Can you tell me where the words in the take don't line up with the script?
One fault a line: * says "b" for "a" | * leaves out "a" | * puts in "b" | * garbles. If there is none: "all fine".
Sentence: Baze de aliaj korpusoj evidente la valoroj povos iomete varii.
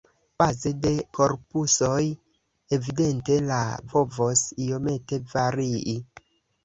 * leaves out "aliaj"
* leaves out "valoroj"